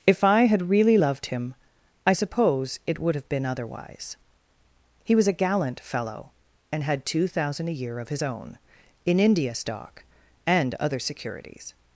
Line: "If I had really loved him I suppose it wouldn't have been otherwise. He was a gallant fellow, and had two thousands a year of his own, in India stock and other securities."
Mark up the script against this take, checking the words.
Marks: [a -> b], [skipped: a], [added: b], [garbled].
"If I had really loved him I suppose it [wouldn't -> would] have been otherwise. He was a gallant fellow, and had two [thousands -> thousand] a year of his own, in India stock and other securities."